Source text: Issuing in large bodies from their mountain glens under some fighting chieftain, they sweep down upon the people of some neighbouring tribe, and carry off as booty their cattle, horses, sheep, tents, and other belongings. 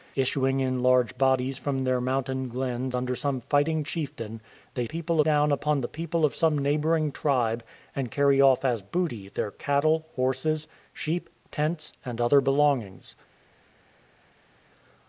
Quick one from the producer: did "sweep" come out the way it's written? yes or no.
no